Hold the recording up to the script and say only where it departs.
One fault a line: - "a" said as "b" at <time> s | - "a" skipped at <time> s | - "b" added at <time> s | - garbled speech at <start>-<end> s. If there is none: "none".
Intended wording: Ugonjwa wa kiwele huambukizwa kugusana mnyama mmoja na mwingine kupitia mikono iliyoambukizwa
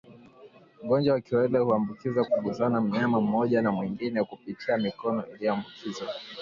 none